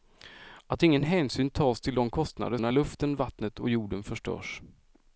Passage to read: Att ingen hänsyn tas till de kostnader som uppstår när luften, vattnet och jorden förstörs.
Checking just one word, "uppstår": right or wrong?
wrong